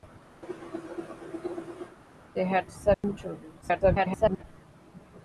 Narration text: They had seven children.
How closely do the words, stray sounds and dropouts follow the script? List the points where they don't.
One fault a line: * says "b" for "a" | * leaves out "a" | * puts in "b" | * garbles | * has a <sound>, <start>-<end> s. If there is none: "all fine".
* has a cough, 0.4-2.0 s
* has a dropout, 2.9-3.0 s
* garbles